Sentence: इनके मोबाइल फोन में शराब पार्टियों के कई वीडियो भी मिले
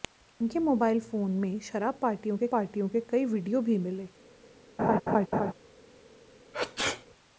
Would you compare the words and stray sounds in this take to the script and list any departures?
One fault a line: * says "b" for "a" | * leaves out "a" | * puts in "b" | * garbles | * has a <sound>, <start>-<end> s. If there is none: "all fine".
* puts in "पार्टियों के"
* has a laugh, 4.8-5.5 s
* has a sneeze, 6.5-7.1 s